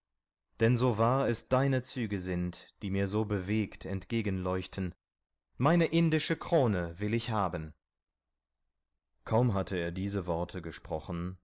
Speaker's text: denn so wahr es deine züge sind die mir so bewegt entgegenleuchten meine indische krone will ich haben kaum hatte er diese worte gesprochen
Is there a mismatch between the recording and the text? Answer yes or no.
no